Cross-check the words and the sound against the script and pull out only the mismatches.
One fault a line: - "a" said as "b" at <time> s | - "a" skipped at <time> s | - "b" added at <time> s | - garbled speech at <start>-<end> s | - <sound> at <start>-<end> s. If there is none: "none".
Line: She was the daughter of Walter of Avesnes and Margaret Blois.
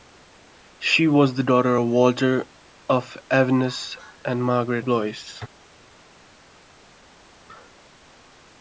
none